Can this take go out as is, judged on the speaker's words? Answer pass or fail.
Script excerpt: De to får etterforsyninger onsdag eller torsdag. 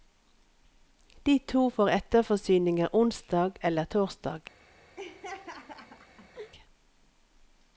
pass